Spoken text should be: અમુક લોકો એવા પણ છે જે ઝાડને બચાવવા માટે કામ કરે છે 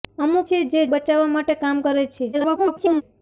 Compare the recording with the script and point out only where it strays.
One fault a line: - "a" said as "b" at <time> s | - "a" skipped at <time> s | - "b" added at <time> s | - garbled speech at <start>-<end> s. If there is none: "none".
- "લોકો એવા પણ" skipped at 0.5 s
- "ઝાડને" skipped at 0.8 s
- garbled speech at 2.3-3.0 s